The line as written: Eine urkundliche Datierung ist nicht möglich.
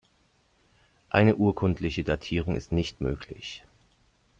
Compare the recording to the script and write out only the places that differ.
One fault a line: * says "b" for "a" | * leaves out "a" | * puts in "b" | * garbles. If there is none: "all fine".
all fine